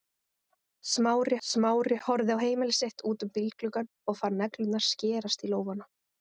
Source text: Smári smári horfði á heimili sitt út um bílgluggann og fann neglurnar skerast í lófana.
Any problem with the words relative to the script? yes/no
no